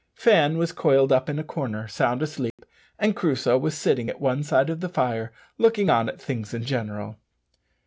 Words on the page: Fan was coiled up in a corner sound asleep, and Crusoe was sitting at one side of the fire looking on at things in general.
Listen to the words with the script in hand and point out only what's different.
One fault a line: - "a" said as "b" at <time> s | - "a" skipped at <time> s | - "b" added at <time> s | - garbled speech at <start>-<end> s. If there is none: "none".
none